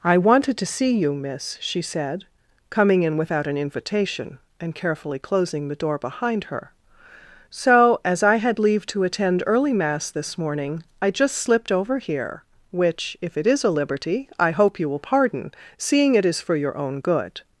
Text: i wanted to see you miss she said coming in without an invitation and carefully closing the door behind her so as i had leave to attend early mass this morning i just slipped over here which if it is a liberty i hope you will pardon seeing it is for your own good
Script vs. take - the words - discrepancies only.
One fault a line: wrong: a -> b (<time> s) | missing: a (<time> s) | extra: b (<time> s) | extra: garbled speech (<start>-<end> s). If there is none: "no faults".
no faults